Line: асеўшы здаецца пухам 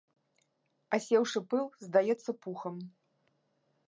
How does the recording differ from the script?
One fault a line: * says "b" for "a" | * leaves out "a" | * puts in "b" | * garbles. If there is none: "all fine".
* puts in "пыл"